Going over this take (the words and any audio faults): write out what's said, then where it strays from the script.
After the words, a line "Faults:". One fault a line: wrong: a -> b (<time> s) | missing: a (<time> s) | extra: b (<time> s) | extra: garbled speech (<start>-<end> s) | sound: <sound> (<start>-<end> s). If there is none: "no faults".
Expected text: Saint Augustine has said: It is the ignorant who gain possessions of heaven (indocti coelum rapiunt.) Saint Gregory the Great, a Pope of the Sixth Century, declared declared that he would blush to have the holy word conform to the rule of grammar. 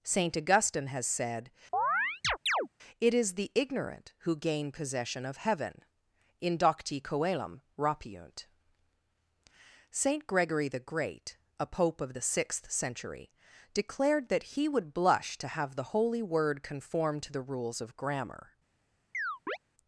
Saint Augustine has said: It is the ignorant who gain possession of heaven (indocti coelum rapiunt.) Saint Gregory the Great, a Pope of the Sixth Century, declared that he would blush to have the holy word conform to the rules of grammar.
Faults:
sound: chirp (1.7-2.7 s)
wrong: possessions -> possession (4.7 s)
missing: declared (14.3 s)
wrong: rule -> rules (17.4 s)
sound: chirp (19.1-19.6 s)